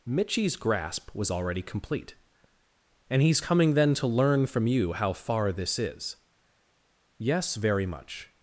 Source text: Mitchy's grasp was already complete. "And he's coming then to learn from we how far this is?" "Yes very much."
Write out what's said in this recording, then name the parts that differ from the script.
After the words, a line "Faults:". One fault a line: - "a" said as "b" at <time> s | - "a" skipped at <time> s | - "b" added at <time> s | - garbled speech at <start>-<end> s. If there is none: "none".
Mitchy's grasp was already complete. "And he's coming then to learn from you how far this is?" "Yes very much."
Faults:
- "we" said as "you" at 4.7 s